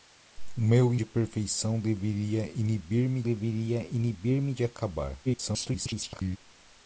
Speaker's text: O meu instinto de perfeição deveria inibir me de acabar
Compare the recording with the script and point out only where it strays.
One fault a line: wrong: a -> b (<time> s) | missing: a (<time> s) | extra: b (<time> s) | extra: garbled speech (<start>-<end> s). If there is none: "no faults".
missing: instinto (0.9 s)
extra: deveria inibir me (3.2 s)
extra: garbled speech (5.2-6.4 s)